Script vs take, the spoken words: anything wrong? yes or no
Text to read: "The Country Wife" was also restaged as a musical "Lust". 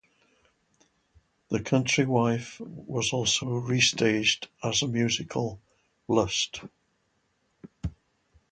no